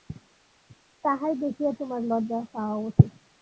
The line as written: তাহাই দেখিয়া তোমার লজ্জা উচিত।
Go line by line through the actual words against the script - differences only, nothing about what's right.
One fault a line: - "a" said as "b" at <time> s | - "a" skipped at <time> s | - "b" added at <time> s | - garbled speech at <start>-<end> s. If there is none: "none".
- "পাওয়া" added at 2.5 s